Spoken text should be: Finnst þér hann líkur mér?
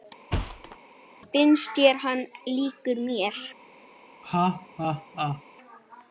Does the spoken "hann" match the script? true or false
true